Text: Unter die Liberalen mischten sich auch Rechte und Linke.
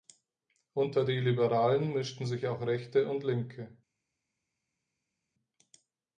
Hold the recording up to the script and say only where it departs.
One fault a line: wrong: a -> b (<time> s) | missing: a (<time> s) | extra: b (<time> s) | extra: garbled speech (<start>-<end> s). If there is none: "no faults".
no faults